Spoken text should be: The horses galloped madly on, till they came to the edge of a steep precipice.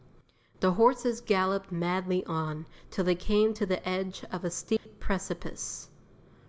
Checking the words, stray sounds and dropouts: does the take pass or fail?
fail